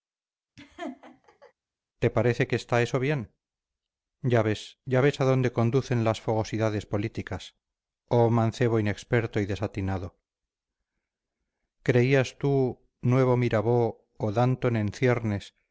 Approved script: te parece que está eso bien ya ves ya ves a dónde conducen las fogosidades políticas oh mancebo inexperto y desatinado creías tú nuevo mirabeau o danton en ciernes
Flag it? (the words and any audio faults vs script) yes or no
yes